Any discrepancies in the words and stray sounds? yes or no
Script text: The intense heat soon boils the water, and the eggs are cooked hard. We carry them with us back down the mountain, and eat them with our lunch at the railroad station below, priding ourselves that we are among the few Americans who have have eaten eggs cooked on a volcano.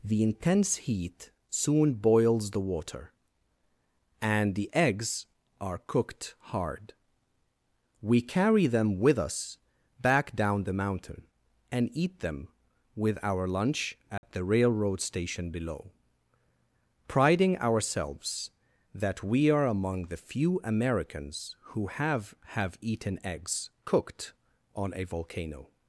yes